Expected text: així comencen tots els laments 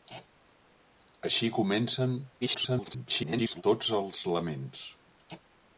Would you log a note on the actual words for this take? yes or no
yes